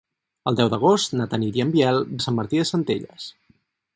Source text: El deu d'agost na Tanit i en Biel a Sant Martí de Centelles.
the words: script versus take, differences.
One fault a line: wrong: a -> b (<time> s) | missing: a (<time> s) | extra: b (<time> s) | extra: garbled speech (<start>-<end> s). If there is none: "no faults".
no faults